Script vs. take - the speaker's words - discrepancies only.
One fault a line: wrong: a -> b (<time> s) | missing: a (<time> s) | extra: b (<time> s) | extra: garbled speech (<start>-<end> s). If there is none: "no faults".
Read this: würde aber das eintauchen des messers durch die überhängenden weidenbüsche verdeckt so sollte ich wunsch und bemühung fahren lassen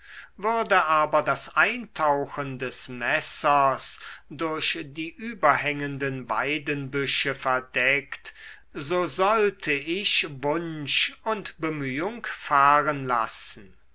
no faults